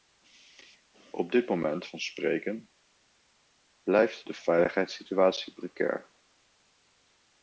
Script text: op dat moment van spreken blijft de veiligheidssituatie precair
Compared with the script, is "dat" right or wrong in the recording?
wrong